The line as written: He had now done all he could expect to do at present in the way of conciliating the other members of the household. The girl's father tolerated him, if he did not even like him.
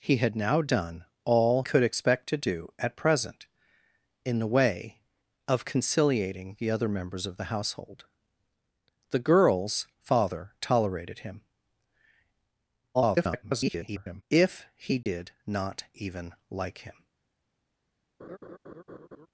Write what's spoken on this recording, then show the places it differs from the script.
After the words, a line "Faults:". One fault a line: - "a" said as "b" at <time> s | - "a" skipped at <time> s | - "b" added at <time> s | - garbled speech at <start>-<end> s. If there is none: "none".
He had now done all could expect to do at present in the way of conciliating the other members of the household. The girl's father tolerated him, [garbled] if he did not even like him.
Faults:
- "he" skipped at 1.6 s
- garbled speech at 12.9-14.2 s